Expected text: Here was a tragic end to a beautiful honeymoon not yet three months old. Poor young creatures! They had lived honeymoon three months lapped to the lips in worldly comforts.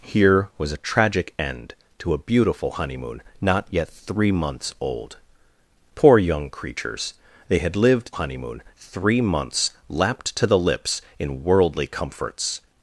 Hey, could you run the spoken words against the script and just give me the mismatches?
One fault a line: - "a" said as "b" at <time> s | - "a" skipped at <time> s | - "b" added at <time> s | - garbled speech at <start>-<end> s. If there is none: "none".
none